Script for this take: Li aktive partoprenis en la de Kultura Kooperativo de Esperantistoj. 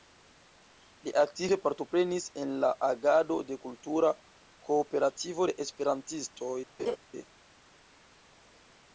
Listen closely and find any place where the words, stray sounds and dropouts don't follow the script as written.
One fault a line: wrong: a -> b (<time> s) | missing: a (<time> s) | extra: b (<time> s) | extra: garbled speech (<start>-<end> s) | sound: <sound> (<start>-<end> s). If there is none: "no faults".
extra: agado (2.9 s)
sound: laugh (6.8-7.0 s)